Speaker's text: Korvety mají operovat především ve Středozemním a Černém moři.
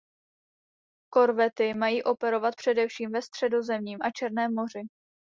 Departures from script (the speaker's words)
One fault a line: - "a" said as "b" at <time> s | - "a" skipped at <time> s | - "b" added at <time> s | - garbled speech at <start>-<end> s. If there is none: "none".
none